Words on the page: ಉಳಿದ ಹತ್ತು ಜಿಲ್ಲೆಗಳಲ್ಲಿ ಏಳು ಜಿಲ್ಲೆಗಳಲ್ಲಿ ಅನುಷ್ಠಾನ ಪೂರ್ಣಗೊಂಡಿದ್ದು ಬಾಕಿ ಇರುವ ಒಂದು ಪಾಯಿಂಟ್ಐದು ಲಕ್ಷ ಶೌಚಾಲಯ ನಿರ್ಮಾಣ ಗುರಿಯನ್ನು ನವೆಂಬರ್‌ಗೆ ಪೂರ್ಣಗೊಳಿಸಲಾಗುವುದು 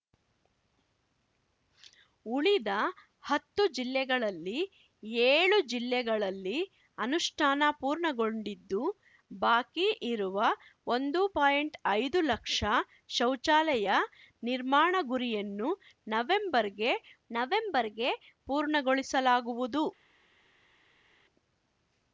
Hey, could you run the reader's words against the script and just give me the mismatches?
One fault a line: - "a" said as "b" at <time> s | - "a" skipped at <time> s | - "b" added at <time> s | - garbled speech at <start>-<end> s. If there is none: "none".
- "ನವೆಂಬರ್‌ಗೆ" added at 17.3 s